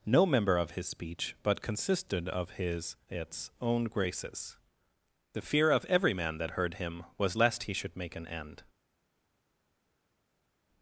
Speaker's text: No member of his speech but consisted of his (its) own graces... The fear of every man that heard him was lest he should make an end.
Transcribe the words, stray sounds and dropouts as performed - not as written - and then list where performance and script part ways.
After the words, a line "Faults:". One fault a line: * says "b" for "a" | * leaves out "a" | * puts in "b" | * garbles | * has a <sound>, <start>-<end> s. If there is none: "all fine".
No member of his speech but consisted of his (its) own graces... The fear of every man that heard him was lest he should make an end.
Faults:
all fine